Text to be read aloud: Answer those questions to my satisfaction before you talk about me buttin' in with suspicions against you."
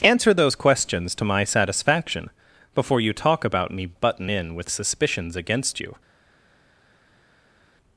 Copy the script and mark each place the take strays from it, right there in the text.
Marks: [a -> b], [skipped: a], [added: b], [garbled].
Answer those questions to my satisfaction before you talk about me buttin' in with suspicions against you."